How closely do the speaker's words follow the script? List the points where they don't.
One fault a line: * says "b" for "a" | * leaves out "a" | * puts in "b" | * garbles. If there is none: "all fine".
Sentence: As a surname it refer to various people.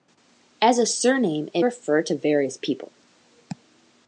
all fine